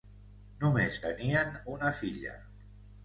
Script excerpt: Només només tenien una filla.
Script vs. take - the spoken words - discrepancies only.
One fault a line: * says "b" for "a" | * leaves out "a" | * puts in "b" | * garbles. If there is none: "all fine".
* leaves out "només"